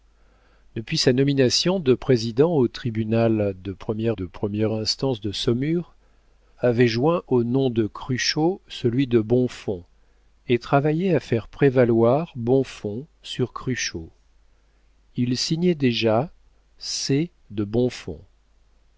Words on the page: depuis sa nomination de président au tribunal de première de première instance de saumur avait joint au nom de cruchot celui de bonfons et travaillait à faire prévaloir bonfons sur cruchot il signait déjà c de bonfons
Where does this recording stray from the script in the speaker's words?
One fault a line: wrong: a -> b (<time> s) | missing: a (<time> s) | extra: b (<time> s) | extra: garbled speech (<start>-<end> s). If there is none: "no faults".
no faults